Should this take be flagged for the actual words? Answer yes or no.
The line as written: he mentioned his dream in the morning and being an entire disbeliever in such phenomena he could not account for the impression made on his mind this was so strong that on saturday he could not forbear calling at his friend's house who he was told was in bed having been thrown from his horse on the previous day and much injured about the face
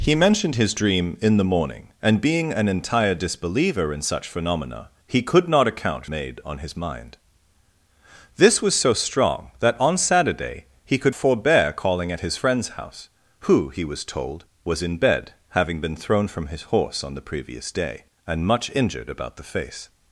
yes